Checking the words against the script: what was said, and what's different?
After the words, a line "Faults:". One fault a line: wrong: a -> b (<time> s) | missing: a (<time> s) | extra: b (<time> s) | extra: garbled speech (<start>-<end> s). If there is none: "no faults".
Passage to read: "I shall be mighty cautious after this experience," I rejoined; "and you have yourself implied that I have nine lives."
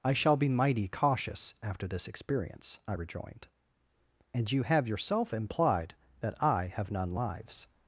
"I shall be mighty cautious after this experience," I rejoined; "and you have yourself implied that I have none lives."
Faults:
wrong: nine -> none (6.9 s)